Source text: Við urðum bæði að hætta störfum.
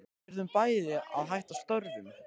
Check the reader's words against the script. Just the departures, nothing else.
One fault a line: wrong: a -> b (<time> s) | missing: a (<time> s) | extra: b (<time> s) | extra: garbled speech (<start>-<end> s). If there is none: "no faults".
no faults